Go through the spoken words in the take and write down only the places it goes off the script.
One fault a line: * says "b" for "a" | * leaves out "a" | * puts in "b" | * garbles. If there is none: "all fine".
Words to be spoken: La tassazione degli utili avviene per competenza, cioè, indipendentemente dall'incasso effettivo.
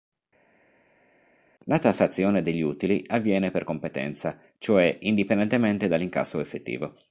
all fine